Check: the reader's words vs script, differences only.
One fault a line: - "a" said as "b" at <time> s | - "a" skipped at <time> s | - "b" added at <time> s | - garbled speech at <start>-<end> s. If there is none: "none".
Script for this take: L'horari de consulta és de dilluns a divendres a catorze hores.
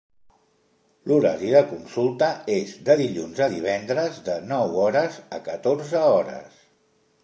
- "de nou hores" added at 4.3 s